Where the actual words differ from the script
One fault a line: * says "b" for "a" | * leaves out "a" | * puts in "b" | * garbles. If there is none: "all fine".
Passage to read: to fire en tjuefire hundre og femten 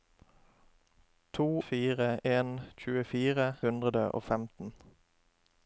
all fine